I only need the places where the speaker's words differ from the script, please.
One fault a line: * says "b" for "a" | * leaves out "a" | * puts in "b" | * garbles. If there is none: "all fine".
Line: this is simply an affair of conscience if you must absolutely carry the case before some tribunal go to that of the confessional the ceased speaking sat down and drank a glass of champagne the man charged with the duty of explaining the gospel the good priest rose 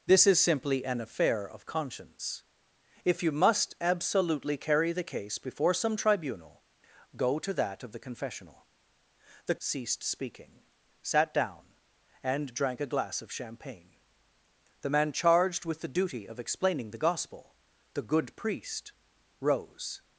all fine